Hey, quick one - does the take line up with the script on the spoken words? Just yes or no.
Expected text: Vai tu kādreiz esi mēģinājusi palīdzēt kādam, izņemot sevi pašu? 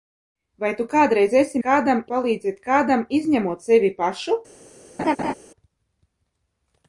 no